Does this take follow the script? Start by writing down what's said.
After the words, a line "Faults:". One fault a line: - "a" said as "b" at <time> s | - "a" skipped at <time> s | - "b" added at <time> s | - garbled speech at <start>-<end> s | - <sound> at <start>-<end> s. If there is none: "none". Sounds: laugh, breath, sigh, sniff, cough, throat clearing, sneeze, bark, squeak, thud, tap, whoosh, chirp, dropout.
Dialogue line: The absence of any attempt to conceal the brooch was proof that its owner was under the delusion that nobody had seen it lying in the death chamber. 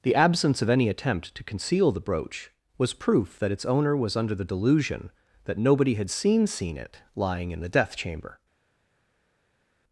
The absence of any attempt to conceal the brooch was proof that its owner was under the delusion that nobody had seen seen it lying in the death chamber.
Faults:
- "seen" added at 6.5 s